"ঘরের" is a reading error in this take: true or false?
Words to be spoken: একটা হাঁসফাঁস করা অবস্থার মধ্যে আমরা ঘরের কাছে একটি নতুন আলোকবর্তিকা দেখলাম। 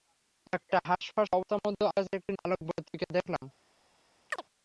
true